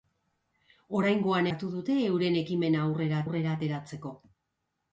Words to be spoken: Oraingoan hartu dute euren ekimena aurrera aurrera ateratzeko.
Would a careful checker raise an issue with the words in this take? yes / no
no